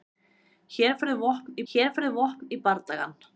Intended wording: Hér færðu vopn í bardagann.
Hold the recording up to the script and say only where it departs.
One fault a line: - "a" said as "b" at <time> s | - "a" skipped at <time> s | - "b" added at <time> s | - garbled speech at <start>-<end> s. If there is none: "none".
- "hér færðu vopn" added at 1.7 s